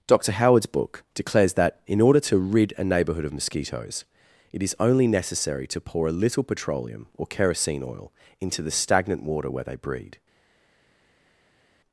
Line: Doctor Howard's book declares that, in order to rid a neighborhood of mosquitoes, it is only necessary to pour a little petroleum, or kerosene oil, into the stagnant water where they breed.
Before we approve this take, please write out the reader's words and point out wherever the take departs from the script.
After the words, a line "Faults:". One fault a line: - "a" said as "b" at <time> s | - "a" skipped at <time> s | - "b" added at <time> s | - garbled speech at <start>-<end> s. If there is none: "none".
Doctor Howard's book declares that, in order to rid a neighborhood of mosquitoes, it is only necessary to pour a little petroleum, or kerosene oil, into the stagnant water where they breed.
Faults:
none